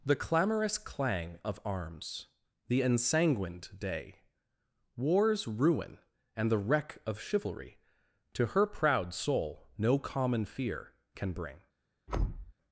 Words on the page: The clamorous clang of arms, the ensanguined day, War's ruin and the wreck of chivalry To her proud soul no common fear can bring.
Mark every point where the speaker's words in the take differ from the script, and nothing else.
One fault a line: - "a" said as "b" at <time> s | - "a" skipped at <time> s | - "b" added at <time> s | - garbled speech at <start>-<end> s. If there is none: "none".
none